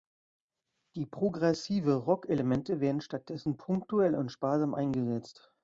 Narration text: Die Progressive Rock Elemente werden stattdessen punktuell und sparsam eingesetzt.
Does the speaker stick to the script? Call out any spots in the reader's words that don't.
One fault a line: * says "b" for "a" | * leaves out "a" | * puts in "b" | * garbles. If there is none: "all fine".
all fine